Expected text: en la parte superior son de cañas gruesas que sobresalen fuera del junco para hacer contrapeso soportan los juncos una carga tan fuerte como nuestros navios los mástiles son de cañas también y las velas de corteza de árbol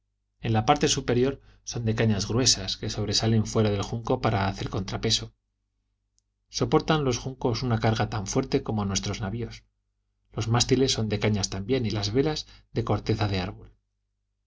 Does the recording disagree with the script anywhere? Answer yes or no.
no